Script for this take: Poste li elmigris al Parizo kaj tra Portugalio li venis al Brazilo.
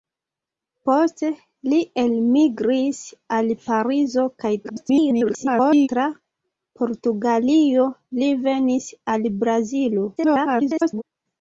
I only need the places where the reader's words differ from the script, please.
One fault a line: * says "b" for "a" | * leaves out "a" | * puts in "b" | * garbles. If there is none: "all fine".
* garbles
* garbles